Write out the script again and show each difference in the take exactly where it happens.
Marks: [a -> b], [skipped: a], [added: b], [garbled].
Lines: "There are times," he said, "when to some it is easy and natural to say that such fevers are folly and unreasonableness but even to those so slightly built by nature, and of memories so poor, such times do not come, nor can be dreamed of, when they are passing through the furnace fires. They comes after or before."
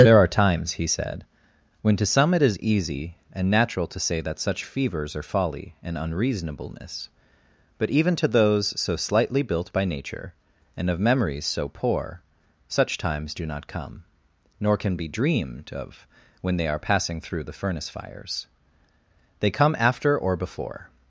"There are times," he said, "when to some it is easy and natural to say that such fevers are folly and unreasonableness but even to those so slightly built by nature, and of memories so poor, such times do not come, nor can be dreamed of, when they are passing through the furnace fires. They [comes -> come] after or before."